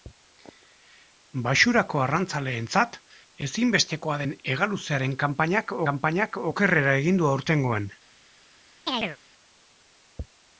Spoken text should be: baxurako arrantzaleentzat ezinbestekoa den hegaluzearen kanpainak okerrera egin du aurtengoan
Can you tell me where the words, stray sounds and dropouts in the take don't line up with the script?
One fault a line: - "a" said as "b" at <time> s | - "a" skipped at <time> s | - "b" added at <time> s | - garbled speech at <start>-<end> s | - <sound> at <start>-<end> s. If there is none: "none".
- "kanpainak" added at 5.9 s
- chirp at 8.9-9.2 s